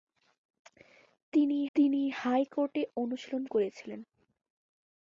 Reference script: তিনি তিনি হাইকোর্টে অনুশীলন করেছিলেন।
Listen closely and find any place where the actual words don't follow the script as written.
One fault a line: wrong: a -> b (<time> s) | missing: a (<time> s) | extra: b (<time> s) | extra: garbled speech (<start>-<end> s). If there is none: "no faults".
no faults